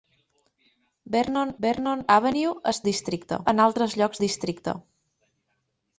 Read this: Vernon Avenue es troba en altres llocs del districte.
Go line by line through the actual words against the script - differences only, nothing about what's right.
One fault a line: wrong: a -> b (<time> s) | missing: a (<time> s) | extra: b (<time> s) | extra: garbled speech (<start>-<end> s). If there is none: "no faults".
extra: vernon (1.6 s)
wrong: troba -> districte (2.9 s)
missing: del (4.2 s)